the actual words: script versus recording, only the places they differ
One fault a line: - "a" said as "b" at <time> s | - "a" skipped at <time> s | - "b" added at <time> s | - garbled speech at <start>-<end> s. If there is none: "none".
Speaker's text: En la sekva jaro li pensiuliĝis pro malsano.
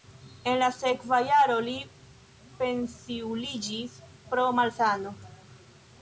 none